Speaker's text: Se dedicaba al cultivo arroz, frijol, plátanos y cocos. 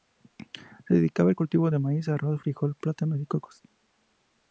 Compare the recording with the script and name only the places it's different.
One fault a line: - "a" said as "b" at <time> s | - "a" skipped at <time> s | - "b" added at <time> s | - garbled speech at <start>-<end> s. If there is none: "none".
- "de maíz" added at 1.7 s